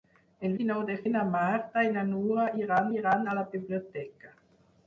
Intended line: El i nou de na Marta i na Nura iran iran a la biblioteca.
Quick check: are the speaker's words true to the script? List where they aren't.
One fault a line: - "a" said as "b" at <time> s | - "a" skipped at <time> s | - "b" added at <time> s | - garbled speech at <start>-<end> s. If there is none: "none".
none